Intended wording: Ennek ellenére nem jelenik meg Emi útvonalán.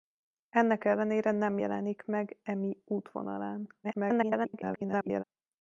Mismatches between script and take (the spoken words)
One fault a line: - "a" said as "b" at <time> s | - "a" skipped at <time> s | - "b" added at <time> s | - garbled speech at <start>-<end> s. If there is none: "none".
- garbled speech at 3.8-5.2 s